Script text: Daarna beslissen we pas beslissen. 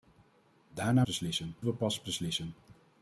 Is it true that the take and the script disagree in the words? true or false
false